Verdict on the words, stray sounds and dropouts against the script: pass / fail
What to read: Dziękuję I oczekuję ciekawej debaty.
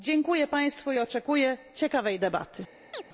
fail